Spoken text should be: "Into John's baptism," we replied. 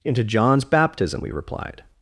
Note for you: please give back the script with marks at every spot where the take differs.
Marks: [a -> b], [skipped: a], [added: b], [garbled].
"Into John's baptism," we replied.